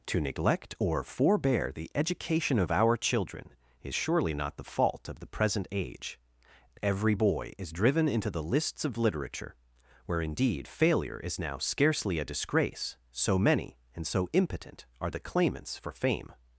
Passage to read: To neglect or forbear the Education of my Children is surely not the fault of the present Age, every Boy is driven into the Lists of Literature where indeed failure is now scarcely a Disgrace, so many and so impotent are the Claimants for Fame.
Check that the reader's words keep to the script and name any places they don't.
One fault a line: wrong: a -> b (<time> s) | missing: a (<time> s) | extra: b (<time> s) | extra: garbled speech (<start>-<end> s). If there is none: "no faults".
wrong: my -> our (2.7 s)